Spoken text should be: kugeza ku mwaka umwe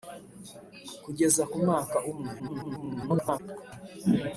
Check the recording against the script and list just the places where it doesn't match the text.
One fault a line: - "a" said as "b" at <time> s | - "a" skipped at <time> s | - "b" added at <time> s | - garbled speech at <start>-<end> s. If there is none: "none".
- garbled speech at 2.4-3.4 s